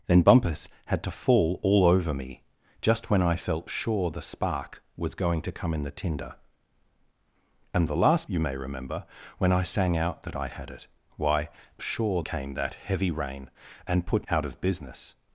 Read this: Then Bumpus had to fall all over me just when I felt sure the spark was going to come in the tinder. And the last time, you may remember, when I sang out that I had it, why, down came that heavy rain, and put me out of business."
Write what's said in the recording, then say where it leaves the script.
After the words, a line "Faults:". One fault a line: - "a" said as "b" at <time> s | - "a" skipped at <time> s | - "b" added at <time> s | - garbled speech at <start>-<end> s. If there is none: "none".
Then Bumpus had to fall all over me just when I felt sure the spark was going to come in the tinder. And the last you may remember, when I sang out that I had it, why, sure came that heavy rain, and put out of business."
Faults:
- "time" skipped at 8.3 s
- "down" said as "sure" at 11.8 s
- "me" skipped at 14.3 s